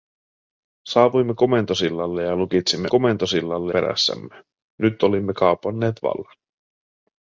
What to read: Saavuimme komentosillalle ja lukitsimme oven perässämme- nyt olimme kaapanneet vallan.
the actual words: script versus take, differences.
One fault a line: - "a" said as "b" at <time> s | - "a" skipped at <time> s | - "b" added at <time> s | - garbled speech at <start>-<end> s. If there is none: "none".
- "oven" said as "komentosillalle" at 2.9 s